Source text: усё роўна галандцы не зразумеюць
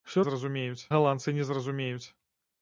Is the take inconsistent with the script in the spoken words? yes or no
yes